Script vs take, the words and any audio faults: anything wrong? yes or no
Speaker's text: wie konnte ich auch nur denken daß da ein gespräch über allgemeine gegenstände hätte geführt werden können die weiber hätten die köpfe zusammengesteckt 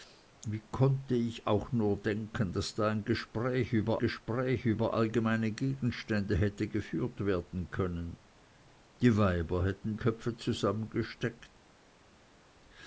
yes